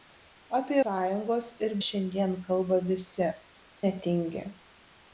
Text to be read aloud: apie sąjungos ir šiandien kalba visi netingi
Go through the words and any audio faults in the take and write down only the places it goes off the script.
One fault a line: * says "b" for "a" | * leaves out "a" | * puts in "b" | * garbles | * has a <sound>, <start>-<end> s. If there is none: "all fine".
all fine